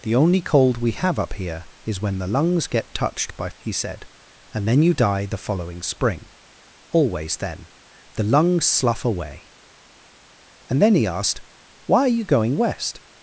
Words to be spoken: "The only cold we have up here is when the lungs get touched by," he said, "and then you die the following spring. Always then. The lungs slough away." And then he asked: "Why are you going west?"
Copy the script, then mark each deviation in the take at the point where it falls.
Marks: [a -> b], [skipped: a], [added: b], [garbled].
"The only cold we have up here is when the lungs get touched by," he said, "and then you die the following spring. Always then. The lungs slough away." And then he asked: "Why are you going west?"